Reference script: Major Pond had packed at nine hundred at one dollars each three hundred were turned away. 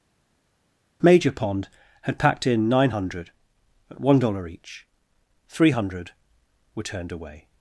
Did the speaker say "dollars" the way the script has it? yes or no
no